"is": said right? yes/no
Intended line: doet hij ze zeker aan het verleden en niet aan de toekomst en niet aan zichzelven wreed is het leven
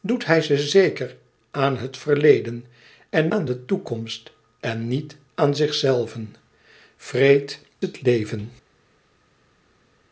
no